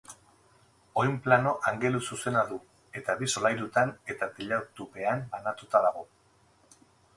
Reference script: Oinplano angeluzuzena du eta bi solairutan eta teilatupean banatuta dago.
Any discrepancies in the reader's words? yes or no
no